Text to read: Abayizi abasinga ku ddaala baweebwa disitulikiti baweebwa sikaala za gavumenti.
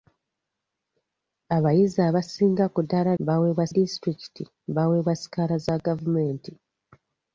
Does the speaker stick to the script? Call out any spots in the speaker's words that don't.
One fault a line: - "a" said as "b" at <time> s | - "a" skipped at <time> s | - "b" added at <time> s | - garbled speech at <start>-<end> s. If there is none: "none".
none